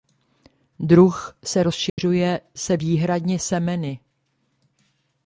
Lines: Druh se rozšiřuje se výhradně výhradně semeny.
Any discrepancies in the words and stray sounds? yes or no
yes